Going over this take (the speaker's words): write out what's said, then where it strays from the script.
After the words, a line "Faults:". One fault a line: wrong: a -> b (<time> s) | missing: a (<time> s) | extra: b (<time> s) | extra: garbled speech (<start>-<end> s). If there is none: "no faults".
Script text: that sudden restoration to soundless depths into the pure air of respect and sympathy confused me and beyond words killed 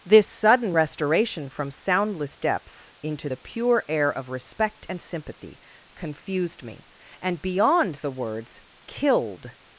this sudden restoration from soundless depths into the pure air of respect and sympathy confused me and beyond the words killed
Faults:
wrong: that -> this (0.0 s)
wrong: to -> from (1.5 s)
extra: the (8.0 s)